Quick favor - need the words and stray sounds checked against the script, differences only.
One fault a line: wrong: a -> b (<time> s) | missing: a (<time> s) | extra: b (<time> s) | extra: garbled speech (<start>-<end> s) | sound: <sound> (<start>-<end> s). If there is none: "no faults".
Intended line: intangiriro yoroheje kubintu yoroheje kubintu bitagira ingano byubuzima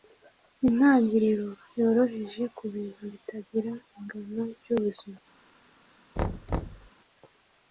missing: yoroheje kubintu (3.0 s)
sound: thud (6.2-6.9 s)